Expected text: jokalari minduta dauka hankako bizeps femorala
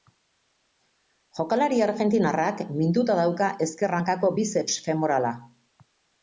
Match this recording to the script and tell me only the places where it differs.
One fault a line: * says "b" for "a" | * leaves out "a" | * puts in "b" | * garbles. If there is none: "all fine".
* puts in "argentinarrak"
* puts in "ezker"